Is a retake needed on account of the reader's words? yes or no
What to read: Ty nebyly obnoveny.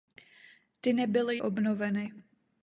no